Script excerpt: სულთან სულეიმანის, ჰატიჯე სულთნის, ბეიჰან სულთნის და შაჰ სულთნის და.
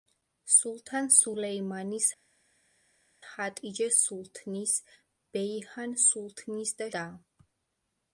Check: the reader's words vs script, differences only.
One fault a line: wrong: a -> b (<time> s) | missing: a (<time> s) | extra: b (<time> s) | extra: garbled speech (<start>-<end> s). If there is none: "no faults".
missing: შაჰ სულთნის (6.9 s)